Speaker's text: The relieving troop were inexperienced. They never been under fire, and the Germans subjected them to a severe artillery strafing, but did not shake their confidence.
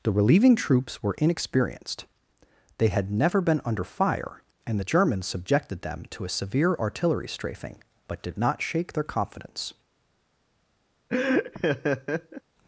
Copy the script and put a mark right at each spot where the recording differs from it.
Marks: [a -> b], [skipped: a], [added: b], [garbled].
The relieving [troop -> troops] were inexperienced. They [added: had] never been under fire, and the Germans subjected them to a severe artillery strafing, but did not shake their confidence.